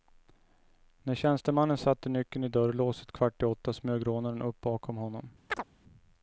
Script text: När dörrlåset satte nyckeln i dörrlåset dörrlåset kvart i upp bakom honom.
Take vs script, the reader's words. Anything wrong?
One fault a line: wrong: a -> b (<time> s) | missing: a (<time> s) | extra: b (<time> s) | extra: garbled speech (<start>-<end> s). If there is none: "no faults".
wrong: dörrlåset -> tjänstemannen (1.1 s)
missing: dörrlåset (3.1 s)
extra: åtta smög rånaren (3.5 s)